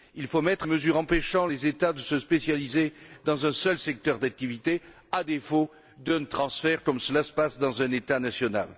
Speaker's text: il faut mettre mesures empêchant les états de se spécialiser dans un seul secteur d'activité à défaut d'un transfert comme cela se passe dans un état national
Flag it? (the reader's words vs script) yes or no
no